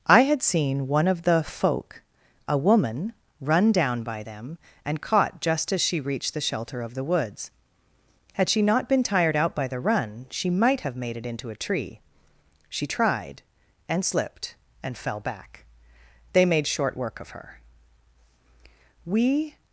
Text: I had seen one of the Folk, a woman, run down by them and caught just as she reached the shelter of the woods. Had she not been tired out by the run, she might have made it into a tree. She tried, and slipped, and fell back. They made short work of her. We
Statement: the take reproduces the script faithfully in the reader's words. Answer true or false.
true